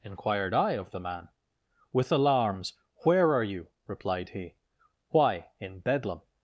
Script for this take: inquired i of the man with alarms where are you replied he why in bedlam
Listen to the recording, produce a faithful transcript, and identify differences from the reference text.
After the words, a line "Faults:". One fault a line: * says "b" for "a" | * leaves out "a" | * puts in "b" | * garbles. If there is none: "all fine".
inquired i of the man with alarms where are you replied he why in bedlam
Faults:
all fine